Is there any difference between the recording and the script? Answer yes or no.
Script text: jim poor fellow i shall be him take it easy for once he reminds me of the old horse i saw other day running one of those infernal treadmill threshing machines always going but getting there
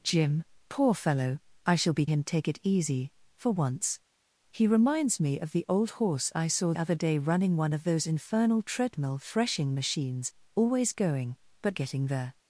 no